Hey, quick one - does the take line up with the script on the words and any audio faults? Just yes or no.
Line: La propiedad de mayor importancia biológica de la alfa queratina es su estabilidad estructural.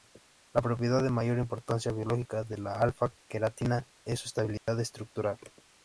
no